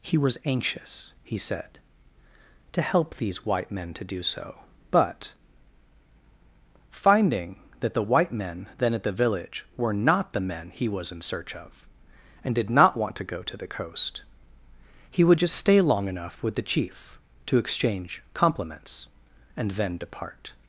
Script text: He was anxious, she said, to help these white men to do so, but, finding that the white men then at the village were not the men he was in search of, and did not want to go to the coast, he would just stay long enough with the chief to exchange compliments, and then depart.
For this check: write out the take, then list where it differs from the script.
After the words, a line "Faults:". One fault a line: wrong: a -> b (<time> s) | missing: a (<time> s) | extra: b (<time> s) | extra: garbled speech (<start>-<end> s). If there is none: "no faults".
He was anxious, he said, to help these white men to do so, but, finding that the white men then at the village were not the men he was in search of, and did not want to go to the coast, he would just stay long enough with the chief to exchange compliments, and then depart.
Faults:
wrong: she -> he (1.2 s)